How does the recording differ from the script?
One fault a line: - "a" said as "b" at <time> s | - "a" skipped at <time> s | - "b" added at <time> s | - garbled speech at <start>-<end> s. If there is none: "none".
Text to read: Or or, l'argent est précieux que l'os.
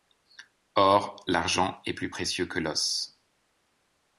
- "or" skipped at 1.2 s
- "plus" added at 1.9 s